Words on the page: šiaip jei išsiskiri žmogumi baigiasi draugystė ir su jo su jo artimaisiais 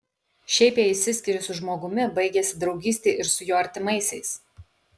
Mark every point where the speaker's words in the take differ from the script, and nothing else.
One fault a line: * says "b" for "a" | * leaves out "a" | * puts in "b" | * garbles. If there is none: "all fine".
* puts in "su"
* leaves out "su jo"